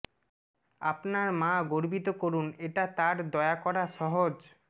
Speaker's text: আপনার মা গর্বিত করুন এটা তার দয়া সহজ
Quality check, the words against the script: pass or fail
fail